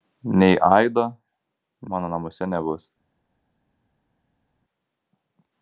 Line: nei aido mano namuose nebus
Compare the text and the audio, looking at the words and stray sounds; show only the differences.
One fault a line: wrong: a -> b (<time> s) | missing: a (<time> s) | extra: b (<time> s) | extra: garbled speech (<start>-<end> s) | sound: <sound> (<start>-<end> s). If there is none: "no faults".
no faults